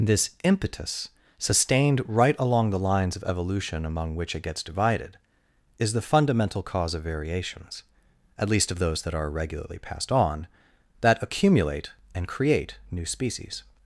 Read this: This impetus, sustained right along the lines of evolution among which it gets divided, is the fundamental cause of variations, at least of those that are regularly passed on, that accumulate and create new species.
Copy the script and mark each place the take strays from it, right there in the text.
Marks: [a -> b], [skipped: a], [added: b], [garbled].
This impetus, sustained right along the lines of evolution among which it gets divided, is the fundamental cause of variations, at least of those that are regularly passed on, that accumulate and create new species.